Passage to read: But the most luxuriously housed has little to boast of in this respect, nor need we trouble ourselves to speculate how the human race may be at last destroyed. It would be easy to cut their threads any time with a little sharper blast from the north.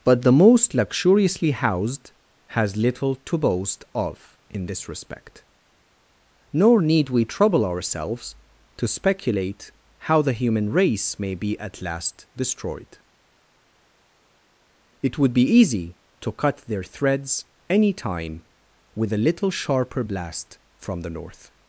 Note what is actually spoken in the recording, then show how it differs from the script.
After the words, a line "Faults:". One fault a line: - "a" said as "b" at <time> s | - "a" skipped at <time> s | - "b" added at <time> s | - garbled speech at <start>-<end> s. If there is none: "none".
But the most luxuriously housed has little to boast of in this respect, nor need we trouble ourselves to speculate how the human race may be at last destroyed. It would be easy to cut their threads any time with a little sharper blast from the north.
Faults:
none